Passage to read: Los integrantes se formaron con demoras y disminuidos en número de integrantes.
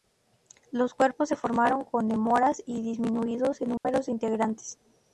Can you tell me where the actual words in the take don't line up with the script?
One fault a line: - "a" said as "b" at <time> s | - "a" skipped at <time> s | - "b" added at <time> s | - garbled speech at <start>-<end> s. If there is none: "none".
- "integrantes" said as "cuerpos" at 0.9 s